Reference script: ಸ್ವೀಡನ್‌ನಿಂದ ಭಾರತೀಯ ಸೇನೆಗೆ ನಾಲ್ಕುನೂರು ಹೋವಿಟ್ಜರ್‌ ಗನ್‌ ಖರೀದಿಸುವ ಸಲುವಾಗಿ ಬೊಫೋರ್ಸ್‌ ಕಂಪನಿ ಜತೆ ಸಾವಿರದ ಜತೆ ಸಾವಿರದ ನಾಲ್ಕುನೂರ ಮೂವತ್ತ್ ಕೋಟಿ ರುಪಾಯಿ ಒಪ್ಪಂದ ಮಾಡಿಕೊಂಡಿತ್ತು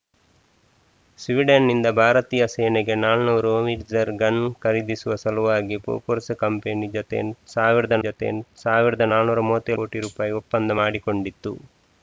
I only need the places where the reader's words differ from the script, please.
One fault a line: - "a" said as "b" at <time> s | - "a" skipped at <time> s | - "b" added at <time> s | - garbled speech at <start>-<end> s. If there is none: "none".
none